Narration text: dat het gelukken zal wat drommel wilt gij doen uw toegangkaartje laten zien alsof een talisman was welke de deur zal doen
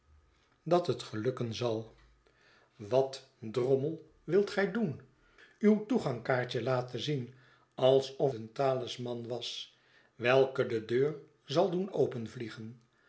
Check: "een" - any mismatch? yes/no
no